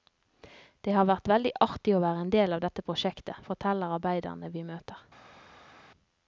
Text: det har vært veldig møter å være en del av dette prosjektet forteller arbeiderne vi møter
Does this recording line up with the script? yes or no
no